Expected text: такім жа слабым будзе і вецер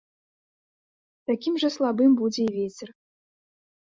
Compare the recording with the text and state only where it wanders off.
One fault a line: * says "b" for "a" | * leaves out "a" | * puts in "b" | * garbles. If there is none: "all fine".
all fine